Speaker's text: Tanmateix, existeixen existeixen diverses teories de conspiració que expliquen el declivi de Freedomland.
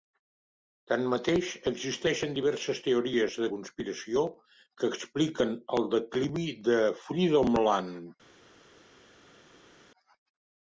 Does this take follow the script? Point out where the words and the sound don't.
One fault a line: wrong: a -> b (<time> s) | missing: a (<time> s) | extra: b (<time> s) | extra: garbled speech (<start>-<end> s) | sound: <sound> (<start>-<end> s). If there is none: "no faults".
missing: existeixen (2.3 s)